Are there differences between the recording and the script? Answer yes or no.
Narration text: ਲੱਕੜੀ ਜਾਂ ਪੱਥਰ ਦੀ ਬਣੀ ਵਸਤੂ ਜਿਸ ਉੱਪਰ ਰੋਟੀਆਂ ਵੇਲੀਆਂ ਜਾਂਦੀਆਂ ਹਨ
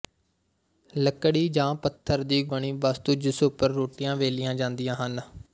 no